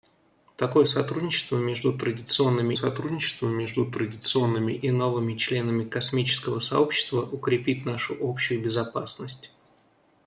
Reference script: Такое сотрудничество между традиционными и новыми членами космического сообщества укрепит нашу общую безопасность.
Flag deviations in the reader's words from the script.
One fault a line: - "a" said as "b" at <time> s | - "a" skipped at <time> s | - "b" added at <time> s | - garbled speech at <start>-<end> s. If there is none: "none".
- "сотрудничество между традиционными" added at 2.7 s